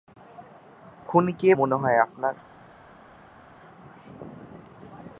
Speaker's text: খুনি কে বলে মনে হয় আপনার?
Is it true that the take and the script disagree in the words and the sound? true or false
true